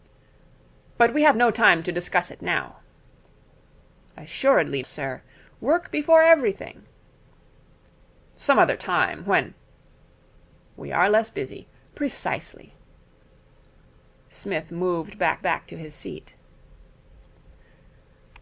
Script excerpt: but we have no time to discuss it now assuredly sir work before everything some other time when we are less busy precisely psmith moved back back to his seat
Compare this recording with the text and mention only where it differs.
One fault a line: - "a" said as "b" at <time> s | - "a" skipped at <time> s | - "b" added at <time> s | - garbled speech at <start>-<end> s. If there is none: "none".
none